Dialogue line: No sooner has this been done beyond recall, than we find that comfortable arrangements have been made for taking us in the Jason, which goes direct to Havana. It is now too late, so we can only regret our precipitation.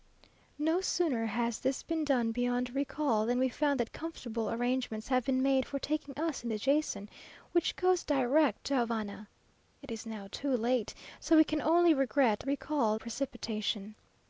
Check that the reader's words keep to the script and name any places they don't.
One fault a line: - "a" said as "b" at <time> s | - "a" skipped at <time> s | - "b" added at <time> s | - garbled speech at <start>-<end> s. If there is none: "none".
- "our" said as "recall" at 12.4 s